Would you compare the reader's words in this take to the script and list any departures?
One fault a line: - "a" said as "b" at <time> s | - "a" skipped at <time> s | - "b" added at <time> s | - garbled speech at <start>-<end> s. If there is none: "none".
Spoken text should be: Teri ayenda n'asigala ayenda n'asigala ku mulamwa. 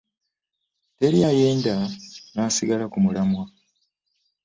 - "ayenda n'asigala" skipped at 2.8 s